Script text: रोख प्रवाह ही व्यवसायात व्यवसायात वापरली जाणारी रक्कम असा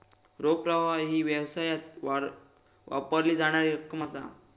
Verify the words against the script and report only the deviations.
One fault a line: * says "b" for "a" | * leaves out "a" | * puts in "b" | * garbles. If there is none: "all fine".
* leaves out "व्यवसायात"